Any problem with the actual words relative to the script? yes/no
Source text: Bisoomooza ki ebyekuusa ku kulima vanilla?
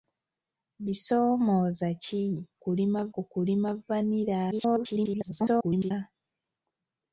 yes